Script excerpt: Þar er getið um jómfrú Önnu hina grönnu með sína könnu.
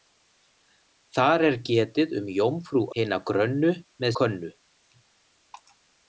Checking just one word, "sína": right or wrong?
wrong